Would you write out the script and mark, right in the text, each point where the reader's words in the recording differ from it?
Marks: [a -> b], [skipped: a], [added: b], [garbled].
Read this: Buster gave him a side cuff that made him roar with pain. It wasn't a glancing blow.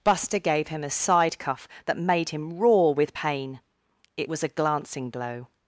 Buster gave him a side cuff that made him roar with pain. It [wasn't -> was] a glancing blow.